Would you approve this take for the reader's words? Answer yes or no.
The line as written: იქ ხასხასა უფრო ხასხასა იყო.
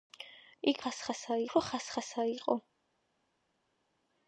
yes